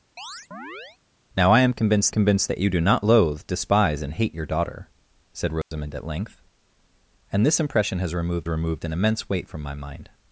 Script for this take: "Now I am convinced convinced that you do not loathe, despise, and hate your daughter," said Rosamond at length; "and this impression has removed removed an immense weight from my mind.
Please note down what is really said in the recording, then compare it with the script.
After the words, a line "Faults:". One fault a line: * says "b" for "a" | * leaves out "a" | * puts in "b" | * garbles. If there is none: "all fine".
"Now I am convinced convinced that you do not loathe, despise, and hate your daughter," said Rosamond at length; "and this impression has removed removed an immense weight from my mind.
Faults:
all fine